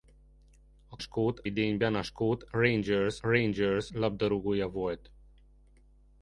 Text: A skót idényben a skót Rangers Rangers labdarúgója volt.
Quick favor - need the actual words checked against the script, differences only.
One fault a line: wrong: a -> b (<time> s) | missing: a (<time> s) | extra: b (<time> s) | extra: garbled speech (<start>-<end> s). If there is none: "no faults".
no faults